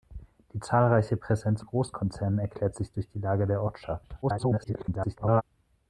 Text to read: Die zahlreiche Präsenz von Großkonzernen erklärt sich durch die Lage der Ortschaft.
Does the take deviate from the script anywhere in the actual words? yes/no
yes